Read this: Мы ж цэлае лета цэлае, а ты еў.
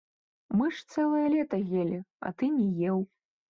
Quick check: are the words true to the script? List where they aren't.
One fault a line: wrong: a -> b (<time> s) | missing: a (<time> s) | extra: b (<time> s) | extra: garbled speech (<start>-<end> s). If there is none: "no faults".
wrong: цэлае -> елі (1.8 s)
extra: не (2.6 s)